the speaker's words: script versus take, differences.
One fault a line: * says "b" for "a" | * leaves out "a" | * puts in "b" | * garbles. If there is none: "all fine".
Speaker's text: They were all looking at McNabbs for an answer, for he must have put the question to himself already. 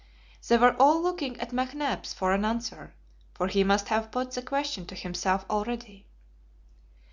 all fine